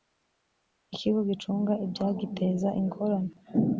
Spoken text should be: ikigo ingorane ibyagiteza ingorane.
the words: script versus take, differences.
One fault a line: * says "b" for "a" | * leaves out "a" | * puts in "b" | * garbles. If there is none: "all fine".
* says "gicunga" for "ingorane"